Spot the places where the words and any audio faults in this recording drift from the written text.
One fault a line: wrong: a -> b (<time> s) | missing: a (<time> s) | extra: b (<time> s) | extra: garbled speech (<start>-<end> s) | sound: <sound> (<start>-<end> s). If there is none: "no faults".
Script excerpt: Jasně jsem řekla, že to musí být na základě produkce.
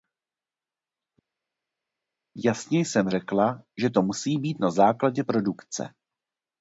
no faults